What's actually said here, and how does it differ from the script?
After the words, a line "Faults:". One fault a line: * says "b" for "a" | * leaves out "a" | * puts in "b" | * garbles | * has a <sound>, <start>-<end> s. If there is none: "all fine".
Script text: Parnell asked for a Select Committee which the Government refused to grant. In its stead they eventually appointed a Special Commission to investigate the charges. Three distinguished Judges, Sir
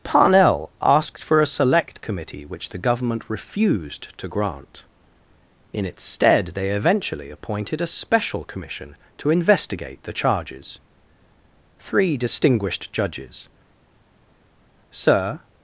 Parnell asked for a Select Committee which the Government refused to grant. In its stead they eventually appointed a Special Commission to investigate the charges. Three distinguished Judges, Sir
Faults:
all fine